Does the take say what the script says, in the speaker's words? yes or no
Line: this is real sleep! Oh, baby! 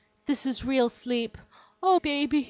yes